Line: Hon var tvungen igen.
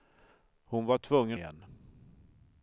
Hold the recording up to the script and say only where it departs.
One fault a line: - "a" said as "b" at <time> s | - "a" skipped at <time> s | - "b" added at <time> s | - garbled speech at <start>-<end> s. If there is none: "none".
none